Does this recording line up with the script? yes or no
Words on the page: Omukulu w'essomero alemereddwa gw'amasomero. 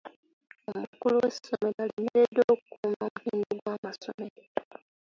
no